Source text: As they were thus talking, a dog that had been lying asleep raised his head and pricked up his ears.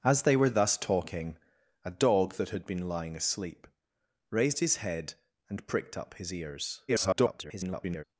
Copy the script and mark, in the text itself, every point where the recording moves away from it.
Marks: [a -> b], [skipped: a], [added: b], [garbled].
As they were thus talking, a dog that had been lying asleep raised his head and pricked up his ears. [garbled]